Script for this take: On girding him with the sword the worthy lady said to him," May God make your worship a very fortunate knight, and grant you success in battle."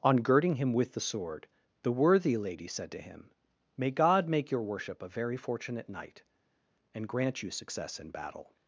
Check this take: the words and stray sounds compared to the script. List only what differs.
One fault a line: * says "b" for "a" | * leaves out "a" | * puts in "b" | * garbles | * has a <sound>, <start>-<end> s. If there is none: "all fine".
all fine